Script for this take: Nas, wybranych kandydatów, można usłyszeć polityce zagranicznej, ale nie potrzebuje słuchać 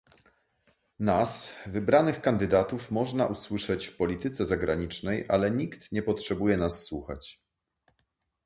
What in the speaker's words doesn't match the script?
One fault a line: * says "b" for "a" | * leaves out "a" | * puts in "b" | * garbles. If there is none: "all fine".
* puts in "w"
* puts in "nikt"
* puts in "nas"